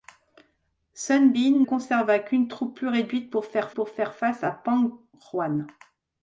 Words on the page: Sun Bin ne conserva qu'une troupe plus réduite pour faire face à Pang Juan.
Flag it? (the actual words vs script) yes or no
yes